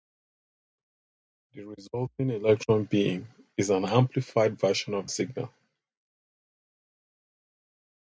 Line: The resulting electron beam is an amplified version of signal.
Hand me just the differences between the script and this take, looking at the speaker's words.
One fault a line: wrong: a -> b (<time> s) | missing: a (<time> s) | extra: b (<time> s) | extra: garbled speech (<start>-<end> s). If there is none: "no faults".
no faults